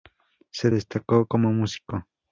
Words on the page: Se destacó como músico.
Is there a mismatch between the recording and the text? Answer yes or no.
no